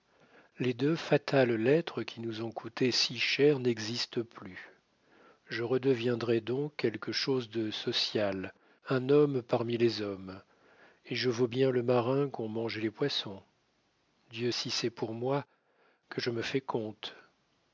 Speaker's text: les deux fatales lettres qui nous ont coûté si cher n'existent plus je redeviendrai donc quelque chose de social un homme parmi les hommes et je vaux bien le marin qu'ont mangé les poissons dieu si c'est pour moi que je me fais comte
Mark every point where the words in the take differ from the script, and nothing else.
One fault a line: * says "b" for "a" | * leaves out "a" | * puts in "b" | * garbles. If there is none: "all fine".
all fine